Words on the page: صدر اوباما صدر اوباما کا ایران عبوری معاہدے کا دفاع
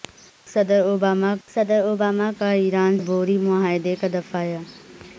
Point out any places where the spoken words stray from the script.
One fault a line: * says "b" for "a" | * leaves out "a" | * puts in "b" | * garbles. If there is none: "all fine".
all fine